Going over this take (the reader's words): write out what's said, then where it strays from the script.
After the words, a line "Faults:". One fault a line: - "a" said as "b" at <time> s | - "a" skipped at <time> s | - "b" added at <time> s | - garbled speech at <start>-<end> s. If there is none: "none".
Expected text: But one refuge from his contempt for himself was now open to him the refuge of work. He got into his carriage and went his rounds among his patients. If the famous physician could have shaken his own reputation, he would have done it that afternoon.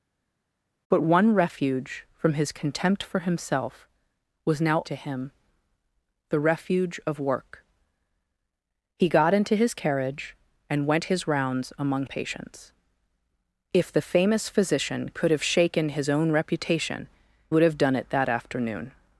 But one refuge from his contempt for himself was now to him the refuge of work. He got into his carriage and went his rounds among patients. If the famous physician could have shaken his own reputation, would have done it that afternoon.
Faults:
- "open" skipped at 4.8 s
- "his" skipped at 12.1 s
- "he" skipped at 17.1 s